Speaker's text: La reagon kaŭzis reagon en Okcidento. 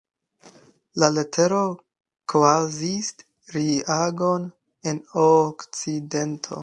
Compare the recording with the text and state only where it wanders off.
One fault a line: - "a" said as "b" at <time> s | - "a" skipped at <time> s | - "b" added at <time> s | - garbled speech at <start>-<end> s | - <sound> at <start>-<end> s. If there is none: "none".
- "reagon" said as "letero" at 1.2 s